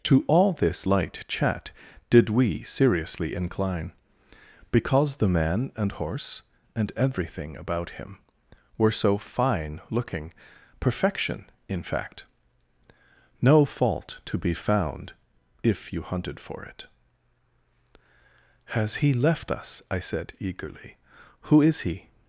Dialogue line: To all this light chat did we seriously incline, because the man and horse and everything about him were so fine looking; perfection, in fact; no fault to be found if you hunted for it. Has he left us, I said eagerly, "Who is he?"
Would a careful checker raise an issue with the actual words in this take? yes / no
no